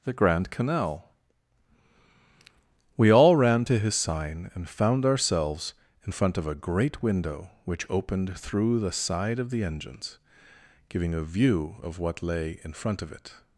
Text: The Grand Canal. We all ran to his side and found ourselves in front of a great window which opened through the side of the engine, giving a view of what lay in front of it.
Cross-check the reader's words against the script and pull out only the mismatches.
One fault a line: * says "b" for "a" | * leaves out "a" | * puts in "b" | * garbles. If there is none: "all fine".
* says "sign" for "side"
* says "engines" for "engine"